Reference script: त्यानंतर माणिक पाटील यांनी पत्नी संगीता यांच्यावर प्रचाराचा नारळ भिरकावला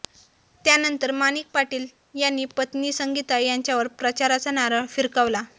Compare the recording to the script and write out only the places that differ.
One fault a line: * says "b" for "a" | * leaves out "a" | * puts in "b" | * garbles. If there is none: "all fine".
all fine